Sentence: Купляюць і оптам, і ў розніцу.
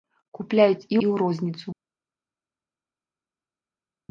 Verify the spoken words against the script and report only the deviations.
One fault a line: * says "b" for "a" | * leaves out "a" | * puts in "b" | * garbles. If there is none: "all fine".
* leaves out "оптам"